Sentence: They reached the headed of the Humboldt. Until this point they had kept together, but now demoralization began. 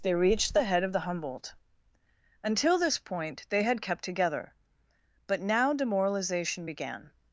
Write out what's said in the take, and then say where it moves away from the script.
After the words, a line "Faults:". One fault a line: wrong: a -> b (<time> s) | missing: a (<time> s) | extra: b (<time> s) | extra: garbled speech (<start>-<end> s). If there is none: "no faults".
They reached the head of the Humboldt. Until this point they had kept together, but now demoralization began.
Faults:
wrong: headed -> head (0.6 s)